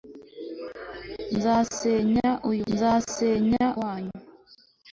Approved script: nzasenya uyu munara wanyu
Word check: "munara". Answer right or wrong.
wrong